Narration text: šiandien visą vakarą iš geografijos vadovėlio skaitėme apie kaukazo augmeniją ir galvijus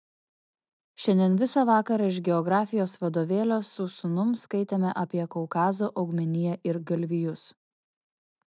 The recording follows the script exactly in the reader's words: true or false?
false